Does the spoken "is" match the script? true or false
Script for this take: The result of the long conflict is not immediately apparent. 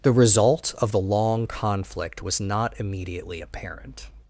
false